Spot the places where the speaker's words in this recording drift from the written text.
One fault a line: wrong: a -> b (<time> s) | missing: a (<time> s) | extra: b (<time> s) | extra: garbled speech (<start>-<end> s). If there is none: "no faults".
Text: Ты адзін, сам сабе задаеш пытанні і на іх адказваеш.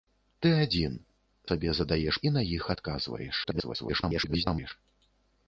missing: сам (0.9 s)
missing: пытанні (2.2 s)
extra: garbled speech (3.4-4.7 s)